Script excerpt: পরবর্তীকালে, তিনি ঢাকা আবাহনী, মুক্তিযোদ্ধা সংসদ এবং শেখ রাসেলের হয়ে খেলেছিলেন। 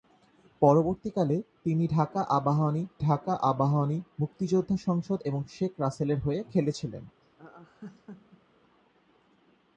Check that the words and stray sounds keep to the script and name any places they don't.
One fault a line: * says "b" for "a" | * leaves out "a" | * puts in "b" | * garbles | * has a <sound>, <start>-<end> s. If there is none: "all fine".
* puts in "ঢাকা আবাহনী"
* has a laugh, 7.2-8.6 s